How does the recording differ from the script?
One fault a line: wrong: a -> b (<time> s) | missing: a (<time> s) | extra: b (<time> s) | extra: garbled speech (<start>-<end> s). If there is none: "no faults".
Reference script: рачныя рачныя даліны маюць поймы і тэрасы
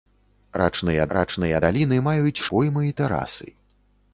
no faults